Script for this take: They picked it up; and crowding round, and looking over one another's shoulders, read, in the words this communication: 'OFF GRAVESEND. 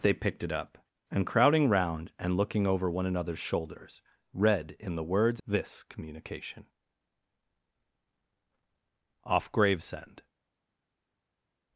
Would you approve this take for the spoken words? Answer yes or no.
yes